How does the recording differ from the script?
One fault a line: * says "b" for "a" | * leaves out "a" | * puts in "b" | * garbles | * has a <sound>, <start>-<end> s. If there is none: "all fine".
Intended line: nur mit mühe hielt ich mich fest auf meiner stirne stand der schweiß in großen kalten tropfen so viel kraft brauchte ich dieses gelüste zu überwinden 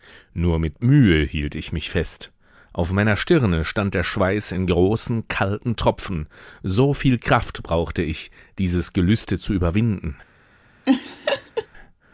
* has a laugh, 10.8-11.7 s